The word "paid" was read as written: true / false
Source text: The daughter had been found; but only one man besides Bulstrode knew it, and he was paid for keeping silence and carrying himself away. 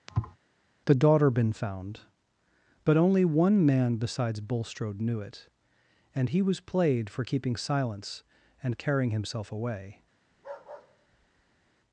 false